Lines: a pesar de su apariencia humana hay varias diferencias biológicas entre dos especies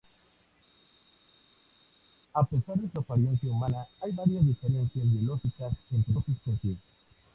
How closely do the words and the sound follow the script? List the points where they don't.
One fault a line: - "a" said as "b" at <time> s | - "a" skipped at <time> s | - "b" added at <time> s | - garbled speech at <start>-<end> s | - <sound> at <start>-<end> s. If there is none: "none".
none